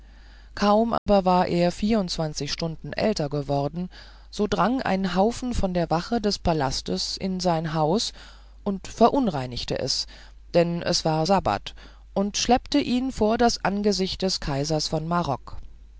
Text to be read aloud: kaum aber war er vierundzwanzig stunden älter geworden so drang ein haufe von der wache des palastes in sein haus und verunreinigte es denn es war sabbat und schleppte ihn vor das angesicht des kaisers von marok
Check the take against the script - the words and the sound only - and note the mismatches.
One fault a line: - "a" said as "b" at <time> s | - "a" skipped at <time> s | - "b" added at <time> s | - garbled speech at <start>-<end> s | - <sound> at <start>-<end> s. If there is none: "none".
- dropout at 1.0-1.1 s